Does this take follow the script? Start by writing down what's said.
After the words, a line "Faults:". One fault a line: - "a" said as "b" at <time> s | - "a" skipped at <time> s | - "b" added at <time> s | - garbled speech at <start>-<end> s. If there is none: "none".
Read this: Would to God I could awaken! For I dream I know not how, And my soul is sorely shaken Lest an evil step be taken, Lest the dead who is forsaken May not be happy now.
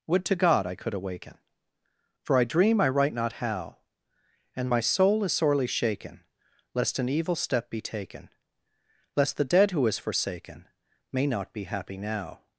Would to God I could awaken! For I dream I write not how, And my soul is sorely shaken Lest an evil step be taken, Lest the dead who is forsaken May not be happy now.
Faults:
- "know" said as "write" at 2.9 s